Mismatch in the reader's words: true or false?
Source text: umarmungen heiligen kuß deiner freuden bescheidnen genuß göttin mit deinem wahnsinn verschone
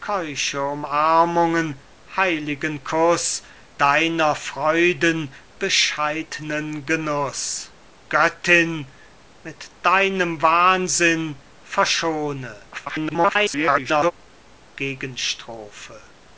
true